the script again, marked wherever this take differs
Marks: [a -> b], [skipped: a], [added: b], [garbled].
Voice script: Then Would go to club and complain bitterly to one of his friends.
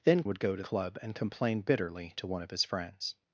Then Would go to club and complain bitterly to one of his friends.